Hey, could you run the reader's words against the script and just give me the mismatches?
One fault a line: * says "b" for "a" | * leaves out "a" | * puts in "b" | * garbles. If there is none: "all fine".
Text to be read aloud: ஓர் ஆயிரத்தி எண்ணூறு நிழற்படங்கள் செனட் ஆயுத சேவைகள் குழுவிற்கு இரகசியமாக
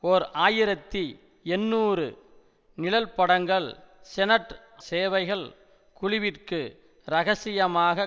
* leaves out "ஆயுத"